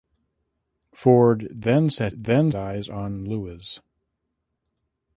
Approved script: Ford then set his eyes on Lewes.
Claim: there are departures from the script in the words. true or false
true